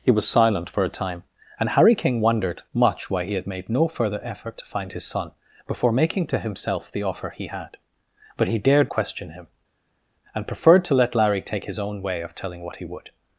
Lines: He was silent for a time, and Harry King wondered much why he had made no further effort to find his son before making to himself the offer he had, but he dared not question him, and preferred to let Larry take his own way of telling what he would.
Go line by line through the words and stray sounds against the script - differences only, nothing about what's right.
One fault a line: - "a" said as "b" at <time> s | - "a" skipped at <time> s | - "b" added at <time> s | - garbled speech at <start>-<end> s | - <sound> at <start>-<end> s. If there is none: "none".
- "not" skipped at 8.9 s